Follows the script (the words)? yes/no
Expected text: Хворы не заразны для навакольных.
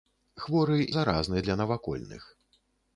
no